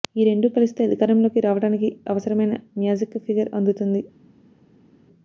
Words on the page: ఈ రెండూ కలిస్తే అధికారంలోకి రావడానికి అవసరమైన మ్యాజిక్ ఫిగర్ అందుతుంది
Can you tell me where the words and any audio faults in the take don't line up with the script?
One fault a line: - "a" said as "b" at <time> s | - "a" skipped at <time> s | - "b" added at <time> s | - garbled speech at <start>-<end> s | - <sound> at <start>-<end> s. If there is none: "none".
none